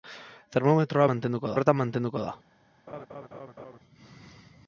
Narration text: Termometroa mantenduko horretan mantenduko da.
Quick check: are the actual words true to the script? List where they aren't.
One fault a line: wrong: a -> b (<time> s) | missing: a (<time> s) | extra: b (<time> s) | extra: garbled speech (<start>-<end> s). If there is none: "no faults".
no faults